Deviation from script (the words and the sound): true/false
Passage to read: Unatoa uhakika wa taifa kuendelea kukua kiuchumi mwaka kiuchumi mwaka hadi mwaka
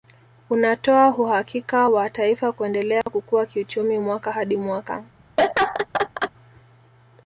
true